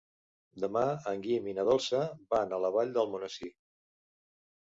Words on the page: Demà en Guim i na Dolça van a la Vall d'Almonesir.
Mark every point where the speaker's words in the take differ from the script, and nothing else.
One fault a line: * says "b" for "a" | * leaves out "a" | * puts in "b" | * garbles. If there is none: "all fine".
all fine